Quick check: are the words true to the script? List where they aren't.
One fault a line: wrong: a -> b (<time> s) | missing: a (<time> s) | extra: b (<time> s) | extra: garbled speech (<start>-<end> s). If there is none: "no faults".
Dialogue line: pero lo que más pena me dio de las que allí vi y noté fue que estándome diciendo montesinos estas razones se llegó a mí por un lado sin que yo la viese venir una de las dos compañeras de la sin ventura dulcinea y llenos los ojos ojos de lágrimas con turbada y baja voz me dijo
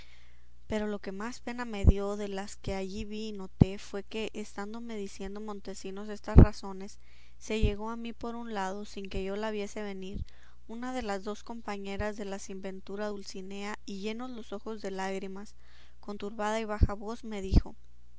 missing: ojos (14.8 s)